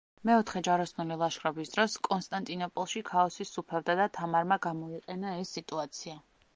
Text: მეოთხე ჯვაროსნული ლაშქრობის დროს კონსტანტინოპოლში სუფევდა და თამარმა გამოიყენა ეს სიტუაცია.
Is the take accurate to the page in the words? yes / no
no